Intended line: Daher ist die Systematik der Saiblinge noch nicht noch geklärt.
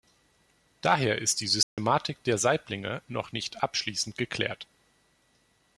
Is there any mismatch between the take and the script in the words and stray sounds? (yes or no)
yes